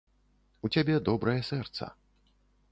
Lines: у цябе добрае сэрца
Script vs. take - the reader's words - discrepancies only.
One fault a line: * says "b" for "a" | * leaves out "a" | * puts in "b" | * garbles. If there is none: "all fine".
all fine